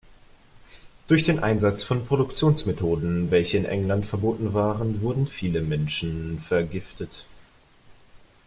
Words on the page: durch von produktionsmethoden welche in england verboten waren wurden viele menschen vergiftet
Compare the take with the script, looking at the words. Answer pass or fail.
fail